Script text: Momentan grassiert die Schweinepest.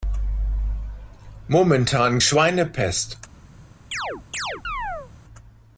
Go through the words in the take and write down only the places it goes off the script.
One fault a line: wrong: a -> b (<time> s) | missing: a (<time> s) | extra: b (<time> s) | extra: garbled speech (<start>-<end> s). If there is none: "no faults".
missing: grassiert die (2.2 s)